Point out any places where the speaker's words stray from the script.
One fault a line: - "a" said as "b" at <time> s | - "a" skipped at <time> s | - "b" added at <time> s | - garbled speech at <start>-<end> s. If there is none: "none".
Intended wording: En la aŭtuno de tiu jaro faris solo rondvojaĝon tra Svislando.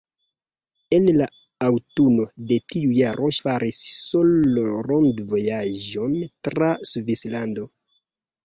none